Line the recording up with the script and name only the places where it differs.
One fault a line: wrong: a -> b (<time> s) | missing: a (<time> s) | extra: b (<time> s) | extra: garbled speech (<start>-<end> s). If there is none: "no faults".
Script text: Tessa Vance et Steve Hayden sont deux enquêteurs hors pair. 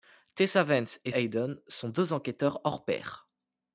missing: Steve (1.1 s)